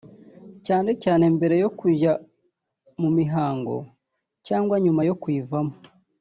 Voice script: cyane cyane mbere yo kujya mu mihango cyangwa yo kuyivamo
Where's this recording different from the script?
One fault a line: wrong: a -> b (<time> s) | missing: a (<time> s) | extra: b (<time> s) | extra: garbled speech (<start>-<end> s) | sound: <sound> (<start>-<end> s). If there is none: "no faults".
extra: nyuma (4.8 s)